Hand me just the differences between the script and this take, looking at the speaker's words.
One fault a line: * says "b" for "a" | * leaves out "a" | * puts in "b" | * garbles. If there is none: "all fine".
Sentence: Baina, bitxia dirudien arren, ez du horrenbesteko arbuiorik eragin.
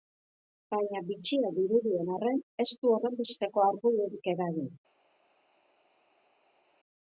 all fine